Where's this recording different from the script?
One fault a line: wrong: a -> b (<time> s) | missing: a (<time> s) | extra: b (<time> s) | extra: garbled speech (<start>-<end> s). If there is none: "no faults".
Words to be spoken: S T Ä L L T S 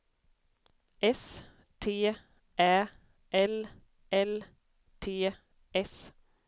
no faults